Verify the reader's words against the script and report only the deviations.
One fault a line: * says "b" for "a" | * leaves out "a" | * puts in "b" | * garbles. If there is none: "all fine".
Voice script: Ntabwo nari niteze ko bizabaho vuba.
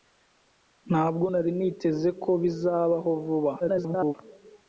* garbles